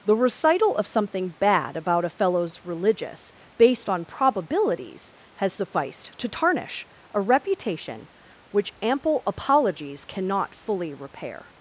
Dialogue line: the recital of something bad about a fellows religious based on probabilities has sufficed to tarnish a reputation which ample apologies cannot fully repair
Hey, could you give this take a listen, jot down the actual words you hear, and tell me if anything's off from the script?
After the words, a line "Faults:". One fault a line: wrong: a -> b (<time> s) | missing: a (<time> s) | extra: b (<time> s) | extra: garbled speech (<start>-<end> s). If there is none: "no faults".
the recital of something bad about a fellows religious based on probabilities has sufficed to tarnish a reputation which ample apologies cannot fully repair
Faults:
no faults